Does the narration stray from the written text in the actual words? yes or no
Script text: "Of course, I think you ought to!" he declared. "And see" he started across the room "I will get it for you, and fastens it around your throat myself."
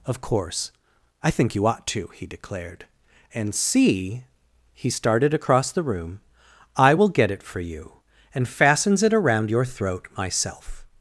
no